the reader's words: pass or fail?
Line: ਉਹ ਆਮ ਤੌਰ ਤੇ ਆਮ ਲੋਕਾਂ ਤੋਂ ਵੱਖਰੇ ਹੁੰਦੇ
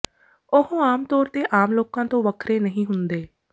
fail